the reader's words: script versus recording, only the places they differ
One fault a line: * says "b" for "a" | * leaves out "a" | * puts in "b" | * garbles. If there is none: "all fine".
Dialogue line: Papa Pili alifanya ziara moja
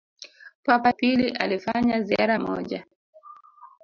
all fine